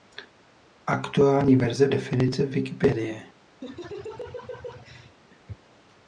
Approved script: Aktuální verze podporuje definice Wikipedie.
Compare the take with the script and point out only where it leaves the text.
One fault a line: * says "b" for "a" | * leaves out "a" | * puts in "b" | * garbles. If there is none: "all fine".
* leaves out "podporuje"